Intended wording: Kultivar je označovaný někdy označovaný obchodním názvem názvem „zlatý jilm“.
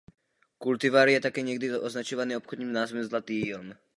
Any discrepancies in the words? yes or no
yes